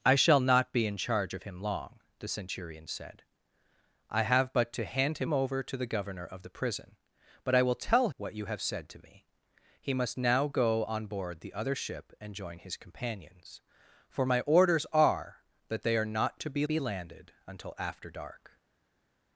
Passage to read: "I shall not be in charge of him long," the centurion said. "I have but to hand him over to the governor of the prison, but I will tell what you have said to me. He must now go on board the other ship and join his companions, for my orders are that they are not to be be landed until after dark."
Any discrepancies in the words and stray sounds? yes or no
no